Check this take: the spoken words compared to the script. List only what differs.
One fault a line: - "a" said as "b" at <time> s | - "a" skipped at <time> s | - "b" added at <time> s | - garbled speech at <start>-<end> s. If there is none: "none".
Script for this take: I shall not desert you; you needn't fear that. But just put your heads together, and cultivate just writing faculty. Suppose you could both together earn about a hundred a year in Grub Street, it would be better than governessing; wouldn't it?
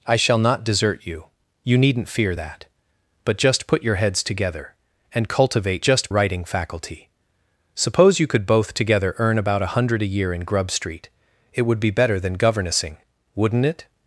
none